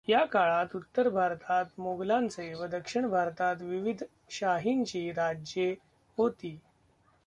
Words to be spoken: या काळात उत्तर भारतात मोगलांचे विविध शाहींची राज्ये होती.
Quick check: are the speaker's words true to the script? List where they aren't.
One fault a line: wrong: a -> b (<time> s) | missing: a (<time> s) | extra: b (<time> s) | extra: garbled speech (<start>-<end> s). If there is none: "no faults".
extra: व दक्षिण भारतात (2.5 s)